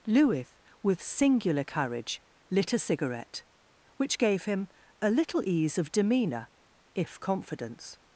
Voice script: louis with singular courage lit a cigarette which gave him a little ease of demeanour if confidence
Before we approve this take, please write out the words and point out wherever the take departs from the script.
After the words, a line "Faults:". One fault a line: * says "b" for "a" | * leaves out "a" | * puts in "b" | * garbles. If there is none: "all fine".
louis with singular courage lit a cigarette which gave him a little ease of demeanour if confidence
Faults:
all fine